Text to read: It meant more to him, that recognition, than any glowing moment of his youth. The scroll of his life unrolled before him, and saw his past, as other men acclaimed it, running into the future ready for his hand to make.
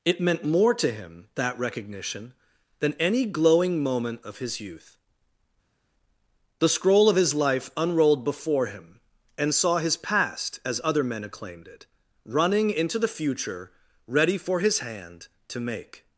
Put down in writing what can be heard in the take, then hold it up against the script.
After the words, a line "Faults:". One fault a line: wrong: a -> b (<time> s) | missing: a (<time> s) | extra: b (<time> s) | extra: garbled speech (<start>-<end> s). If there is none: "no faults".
It meant more to him, that recognition, than any glowing moment of his youth. The scroll of his life unrolled before him, and saw his past, as other men acclaimed it, running into the future ready for his hand to make.
Faults:
no faults